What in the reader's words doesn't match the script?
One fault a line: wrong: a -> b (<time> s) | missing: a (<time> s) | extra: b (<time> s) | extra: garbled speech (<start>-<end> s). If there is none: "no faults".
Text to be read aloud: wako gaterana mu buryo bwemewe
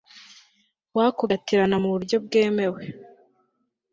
no faults